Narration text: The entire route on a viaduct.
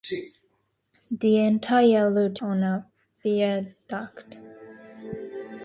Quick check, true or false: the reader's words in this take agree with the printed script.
true